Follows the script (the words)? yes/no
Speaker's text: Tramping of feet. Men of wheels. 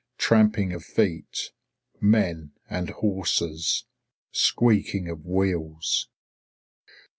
no